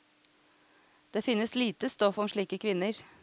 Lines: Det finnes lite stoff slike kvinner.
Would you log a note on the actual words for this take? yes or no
yes